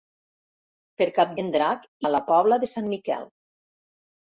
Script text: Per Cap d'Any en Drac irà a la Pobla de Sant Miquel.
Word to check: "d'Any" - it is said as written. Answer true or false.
false